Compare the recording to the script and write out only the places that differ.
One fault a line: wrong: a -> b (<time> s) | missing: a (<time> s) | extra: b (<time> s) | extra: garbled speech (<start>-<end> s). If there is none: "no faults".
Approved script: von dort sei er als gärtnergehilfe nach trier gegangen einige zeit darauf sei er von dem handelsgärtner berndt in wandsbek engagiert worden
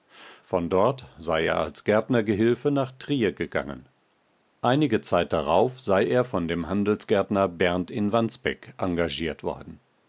no faults